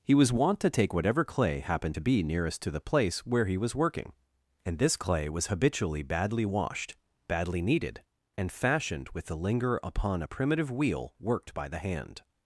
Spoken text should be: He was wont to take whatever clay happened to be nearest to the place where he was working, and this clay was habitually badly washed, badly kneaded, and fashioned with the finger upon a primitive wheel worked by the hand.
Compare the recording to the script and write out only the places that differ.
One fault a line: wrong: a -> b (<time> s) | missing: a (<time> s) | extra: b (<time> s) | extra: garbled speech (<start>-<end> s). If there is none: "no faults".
wrong: finger -> linger (9.3 s)